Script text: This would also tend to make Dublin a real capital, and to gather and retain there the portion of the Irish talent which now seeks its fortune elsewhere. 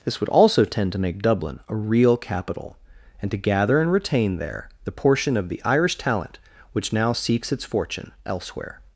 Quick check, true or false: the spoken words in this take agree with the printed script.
true